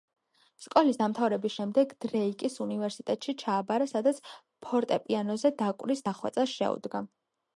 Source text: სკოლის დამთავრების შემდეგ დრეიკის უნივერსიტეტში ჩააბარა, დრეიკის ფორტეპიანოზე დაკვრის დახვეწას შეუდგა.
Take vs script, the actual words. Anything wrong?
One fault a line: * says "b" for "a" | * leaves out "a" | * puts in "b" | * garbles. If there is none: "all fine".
* says "სადაც" for "დრეიკის"